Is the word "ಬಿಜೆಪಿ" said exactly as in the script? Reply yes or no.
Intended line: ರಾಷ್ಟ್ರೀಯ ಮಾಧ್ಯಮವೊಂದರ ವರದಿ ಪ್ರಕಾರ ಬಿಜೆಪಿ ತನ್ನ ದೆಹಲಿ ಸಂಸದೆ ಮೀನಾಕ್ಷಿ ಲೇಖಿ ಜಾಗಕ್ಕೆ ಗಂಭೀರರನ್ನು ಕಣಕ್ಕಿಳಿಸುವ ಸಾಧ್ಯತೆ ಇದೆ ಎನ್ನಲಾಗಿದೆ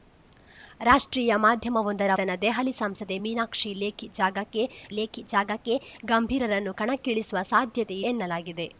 no